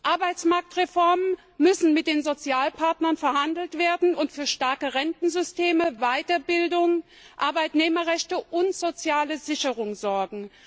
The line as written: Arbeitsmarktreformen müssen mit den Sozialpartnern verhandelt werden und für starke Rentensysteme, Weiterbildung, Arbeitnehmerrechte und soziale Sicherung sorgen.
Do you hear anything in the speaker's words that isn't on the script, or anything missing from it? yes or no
no